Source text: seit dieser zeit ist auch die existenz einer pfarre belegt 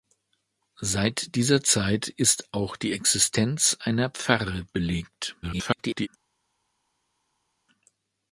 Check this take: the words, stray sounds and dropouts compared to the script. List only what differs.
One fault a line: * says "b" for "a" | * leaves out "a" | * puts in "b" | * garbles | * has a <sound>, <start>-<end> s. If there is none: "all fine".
* garbles